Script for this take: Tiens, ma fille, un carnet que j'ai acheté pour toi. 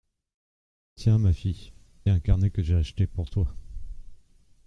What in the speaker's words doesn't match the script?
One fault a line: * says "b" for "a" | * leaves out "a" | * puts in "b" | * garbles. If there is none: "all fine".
all fine